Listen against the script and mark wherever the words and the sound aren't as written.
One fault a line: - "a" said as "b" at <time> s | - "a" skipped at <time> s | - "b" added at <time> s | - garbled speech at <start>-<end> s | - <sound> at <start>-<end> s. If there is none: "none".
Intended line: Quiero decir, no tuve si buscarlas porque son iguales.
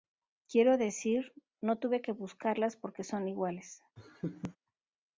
- "si" said as "que" at 2.0 s
- laugh at 4.0-4.6 s